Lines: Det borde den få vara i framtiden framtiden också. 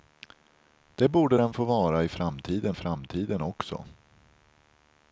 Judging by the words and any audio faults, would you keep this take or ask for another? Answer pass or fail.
pass